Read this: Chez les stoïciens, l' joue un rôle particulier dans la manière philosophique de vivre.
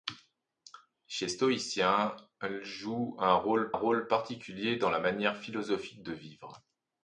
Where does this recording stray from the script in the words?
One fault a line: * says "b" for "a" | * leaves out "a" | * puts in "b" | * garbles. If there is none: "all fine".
* leaves out "les"
* puts in "rôle"